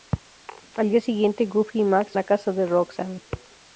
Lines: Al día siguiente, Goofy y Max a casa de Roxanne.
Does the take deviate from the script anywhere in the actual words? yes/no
no